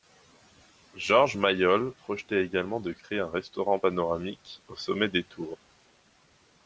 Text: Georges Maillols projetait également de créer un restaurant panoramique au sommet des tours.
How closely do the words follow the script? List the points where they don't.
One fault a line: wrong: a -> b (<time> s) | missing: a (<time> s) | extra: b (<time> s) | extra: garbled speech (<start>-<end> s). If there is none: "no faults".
no faults